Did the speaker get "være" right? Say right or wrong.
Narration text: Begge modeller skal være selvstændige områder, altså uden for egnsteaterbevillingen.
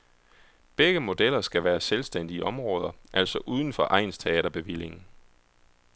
right